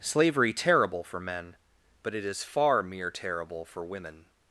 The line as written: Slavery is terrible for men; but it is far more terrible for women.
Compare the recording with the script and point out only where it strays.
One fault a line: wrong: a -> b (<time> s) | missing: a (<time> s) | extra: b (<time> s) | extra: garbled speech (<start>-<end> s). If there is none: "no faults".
missing: is (0.5 s)
wrong: more -> mere (2.8 s)